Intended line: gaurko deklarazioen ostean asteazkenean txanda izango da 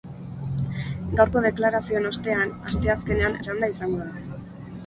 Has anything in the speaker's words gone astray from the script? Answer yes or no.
no